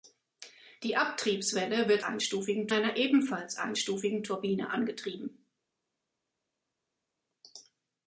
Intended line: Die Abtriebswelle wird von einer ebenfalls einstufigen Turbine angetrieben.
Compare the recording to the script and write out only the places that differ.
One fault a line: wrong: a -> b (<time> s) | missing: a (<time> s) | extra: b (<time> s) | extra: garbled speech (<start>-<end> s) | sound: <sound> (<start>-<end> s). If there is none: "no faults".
wrong: von -> einstufigen (2.0 s)